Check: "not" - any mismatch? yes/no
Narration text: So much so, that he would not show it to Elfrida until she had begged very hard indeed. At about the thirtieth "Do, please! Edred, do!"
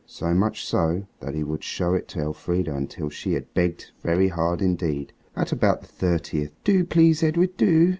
yes